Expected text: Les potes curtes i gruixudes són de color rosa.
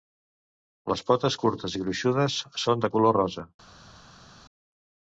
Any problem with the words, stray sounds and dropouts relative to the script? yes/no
no